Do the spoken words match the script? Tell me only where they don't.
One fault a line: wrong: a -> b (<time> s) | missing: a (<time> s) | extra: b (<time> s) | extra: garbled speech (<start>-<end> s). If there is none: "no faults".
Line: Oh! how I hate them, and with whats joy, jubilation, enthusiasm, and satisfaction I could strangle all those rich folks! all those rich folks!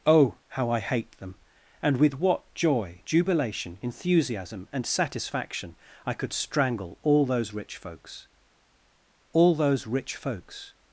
wrong: whats -> what (2.2 s)